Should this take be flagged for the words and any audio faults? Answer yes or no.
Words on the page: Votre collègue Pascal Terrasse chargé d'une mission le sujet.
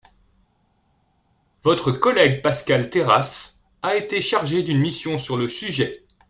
yes